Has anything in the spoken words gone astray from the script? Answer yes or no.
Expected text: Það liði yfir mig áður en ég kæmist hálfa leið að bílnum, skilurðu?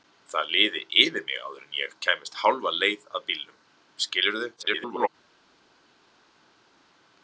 yes